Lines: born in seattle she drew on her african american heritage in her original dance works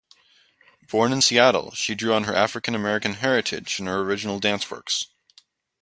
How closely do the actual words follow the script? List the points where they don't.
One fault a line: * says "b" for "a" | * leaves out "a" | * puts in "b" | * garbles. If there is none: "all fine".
all fine